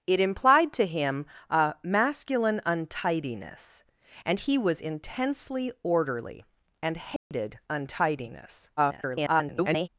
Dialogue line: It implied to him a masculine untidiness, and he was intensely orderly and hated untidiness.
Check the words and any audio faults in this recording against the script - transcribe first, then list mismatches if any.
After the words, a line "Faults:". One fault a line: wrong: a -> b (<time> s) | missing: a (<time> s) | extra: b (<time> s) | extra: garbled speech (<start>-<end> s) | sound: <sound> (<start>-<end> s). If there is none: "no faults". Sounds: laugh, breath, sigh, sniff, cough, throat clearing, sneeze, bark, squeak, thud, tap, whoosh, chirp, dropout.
It implied to him a masculine untidiness, and he was intensely orderly and hated untidiness. [garbled]
Faults:
sound: dropout (7.2-7.3 s)
extra: garbled speech (8.8-9.9 s)